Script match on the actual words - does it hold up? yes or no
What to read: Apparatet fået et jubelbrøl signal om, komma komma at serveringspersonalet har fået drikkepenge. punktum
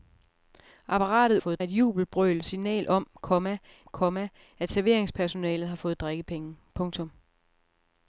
yes